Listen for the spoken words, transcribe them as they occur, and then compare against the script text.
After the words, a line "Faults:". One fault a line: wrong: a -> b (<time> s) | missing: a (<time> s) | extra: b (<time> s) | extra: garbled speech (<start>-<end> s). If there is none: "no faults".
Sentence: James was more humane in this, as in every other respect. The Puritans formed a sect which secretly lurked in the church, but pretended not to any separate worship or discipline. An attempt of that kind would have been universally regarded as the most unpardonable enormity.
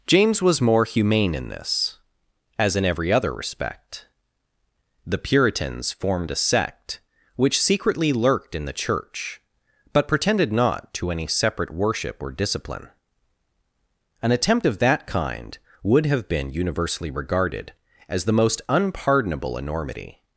James was more humane in this, as in every other respect. The Puritans formed a sect which secretly lurked in the church, but pretended not to any separate worship or discipline. An attempt of that kind would have been universally regarded as the most unpardonable enormity.
Faults:
no faults